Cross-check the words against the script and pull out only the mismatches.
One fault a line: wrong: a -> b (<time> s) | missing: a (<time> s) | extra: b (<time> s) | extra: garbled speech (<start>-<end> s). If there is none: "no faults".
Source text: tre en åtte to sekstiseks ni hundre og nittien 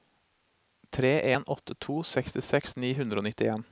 no faults